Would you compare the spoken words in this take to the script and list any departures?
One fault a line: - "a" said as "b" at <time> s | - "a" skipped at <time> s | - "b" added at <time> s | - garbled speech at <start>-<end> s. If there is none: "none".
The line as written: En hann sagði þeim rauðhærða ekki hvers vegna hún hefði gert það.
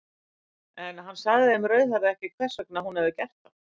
none